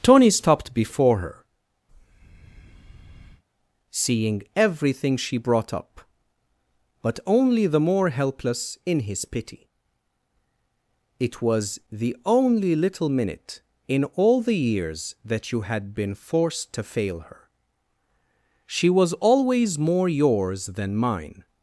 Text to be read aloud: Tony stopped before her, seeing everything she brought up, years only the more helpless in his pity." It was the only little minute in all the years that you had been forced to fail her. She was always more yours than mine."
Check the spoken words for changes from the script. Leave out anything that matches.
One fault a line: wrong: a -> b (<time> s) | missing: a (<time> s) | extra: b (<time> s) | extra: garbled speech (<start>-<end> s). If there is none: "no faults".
wrong: years -> but (7.0 s)